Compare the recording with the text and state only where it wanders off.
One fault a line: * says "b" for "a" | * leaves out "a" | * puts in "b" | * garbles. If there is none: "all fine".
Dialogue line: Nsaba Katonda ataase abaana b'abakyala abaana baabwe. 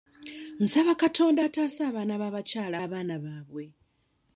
all fine